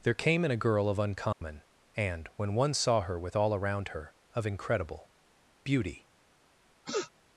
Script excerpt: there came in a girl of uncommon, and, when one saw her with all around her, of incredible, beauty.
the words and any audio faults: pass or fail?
fail